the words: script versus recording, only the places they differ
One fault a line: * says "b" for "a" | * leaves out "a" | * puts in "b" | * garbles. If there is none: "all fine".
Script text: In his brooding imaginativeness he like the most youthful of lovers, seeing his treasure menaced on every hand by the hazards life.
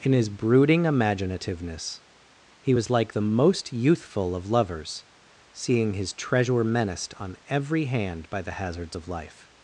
* puts in "was"
* puts in "of"